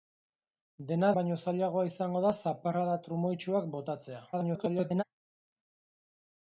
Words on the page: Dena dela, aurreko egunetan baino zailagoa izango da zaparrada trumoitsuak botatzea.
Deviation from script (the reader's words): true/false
true